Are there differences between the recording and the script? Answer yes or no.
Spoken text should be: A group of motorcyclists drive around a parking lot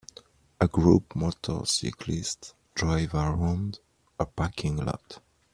yes